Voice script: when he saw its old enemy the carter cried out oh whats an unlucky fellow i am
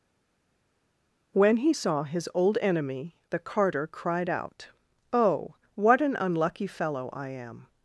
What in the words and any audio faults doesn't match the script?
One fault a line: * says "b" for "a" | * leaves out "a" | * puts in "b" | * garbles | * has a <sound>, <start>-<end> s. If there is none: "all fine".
* says "his" for "its"
* says "what" for "whats"